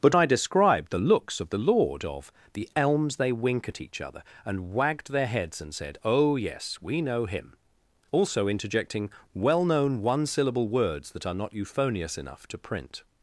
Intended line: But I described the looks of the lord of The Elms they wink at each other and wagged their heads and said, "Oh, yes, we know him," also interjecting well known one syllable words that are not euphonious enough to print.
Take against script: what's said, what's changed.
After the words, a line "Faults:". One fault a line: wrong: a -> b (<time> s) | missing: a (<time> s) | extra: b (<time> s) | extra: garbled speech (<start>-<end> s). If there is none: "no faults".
But I described the looks of the lord of The Elms they wink at each other and wagged their heads and said, "Oh, yes, we know him," also interjecting well known one syllable words that are not euphonious enough to print.
Faults:
no faults